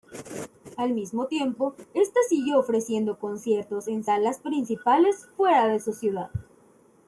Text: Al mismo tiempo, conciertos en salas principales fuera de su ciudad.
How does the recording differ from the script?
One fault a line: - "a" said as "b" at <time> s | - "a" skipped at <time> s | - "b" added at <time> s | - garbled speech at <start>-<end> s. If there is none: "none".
- "esta siguió ofreciendo" added at 1.9 s